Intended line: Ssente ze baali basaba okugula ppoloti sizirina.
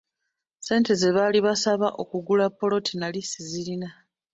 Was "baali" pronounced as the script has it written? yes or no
yes